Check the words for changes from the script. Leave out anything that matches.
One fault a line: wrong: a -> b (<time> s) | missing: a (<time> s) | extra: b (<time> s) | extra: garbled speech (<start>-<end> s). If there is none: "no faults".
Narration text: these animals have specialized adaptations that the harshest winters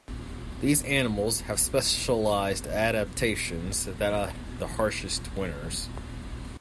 no faults